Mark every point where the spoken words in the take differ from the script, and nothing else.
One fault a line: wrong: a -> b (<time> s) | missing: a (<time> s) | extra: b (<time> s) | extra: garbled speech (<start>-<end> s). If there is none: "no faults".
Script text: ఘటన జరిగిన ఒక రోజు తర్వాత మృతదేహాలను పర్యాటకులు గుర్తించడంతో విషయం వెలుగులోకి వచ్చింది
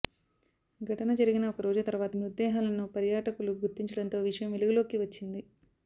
no faults